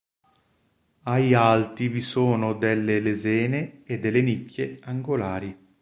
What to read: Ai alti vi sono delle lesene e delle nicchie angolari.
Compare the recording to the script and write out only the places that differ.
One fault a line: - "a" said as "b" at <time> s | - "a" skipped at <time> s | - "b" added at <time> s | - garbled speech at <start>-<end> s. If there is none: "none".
none